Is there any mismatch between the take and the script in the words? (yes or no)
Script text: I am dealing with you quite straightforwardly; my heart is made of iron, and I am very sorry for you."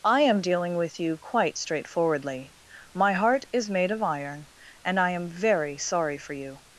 no